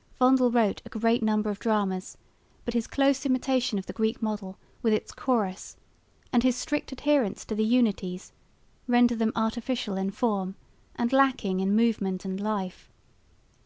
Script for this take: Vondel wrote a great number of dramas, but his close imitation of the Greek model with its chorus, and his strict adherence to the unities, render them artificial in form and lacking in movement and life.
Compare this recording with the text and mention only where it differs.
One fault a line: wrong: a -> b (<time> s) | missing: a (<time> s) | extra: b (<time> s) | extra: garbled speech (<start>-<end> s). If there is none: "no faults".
no faults